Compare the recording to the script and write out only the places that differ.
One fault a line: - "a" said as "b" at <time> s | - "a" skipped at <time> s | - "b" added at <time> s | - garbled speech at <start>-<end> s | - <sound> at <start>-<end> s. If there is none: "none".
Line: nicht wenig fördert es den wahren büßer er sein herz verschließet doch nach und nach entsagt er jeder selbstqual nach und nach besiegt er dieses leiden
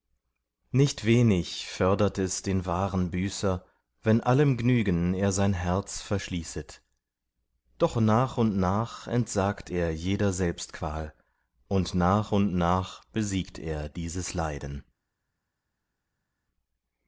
- "wenn allem gnügen" added at 4.0 s
- "und" added at 11.7 s